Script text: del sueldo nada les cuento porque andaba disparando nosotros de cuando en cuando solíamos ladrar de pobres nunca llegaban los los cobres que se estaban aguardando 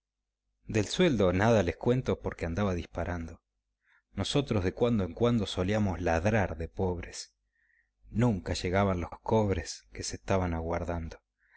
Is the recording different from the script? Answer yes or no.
no